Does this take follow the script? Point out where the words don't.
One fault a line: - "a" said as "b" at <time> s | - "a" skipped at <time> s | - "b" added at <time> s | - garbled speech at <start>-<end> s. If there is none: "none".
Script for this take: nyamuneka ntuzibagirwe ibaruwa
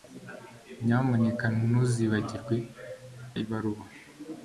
none